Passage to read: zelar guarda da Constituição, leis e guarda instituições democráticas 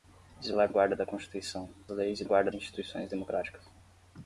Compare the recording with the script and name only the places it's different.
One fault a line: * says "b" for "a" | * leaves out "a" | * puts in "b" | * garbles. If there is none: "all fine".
all fine